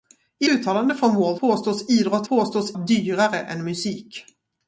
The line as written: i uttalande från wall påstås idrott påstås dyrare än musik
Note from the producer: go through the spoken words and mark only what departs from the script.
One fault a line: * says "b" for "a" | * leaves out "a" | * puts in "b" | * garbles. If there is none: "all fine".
all fine